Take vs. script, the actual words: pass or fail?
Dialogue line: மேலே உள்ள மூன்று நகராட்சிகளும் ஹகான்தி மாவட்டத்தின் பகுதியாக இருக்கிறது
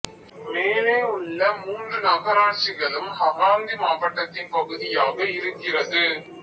pass